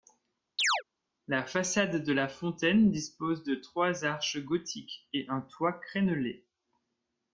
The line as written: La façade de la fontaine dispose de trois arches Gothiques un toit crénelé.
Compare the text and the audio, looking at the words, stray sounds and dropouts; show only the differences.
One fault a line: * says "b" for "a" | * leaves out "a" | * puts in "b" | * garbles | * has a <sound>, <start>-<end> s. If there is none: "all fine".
* has a chirp, 0.6-0.8 s
* puts in "et"